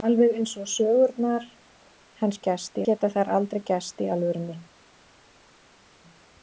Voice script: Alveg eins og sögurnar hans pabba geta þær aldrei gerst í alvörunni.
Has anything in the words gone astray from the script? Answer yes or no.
yes